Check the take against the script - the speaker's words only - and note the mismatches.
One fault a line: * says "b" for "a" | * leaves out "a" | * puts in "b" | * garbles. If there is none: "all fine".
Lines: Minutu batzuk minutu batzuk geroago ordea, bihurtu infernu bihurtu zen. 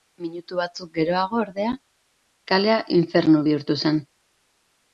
* leaves out "minutu batzuk"
* says "kalea" for "bihurtu"